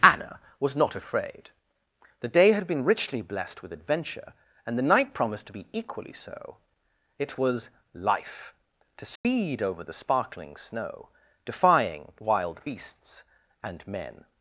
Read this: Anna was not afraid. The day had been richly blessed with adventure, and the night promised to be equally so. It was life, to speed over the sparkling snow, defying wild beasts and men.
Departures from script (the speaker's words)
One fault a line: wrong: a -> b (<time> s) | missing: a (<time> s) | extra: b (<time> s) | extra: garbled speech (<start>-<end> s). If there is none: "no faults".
no faults